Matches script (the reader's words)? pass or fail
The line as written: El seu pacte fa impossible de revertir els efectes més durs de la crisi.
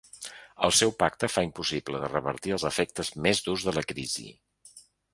pass